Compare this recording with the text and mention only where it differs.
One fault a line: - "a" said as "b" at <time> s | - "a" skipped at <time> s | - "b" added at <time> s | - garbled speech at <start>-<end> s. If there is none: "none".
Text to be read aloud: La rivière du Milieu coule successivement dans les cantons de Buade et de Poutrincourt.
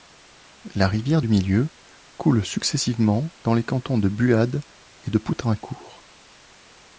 none